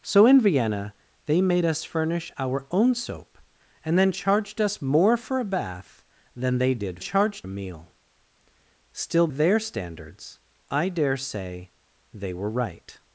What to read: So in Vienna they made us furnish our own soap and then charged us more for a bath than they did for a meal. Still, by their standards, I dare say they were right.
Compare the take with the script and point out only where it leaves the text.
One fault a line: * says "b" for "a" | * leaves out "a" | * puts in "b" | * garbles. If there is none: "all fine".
* says "charged" for "for"
* leaves out "by"